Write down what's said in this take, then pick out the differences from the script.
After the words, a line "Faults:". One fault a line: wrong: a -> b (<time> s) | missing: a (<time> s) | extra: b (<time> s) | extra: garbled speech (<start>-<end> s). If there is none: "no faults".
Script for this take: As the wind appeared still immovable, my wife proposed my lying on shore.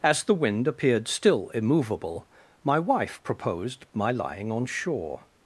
As the wind appeared still immovable, my wife proposed my lying on shore.
Faults:
no faults